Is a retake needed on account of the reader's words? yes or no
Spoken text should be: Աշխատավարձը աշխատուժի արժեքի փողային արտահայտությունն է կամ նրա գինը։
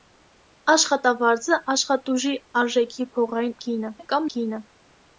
yes